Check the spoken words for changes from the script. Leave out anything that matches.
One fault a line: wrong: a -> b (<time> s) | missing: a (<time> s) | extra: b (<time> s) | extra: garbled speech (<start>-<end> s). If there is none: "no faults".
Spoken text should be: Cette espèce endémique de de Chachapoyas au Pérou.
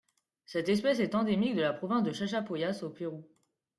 extra: est (1.0 s)
extra: la province (1.6 s)